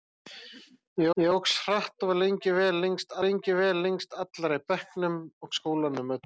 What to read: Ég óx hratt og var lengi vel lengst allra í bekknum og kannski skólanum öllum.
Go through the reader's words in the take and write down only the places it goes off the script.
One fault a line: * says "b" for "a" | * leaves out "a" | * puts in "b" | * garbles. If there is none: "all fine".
* puts in "ég"
* puts in "lengi vel lengst"
* leaves out "kannski"